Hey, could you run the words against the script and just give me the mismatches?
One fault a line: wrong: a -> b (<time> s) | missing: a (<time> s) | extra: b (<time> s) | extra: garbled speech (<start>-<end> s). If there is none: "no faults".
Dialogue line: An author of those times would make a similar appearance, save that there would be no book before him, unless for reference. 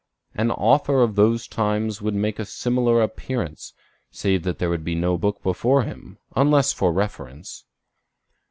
no faults